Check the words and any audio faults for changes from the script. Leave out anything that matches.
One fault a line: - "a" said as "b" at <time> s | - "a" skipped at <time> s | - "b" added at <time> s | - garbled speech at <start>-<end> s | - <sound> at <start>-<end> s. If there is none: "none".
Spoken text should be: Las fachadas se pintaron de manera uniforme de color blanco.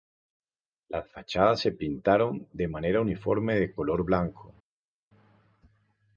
none